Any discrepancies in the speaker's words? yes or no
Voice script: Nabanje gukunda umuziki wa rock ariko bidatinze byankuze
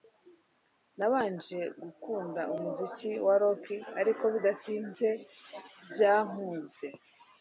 no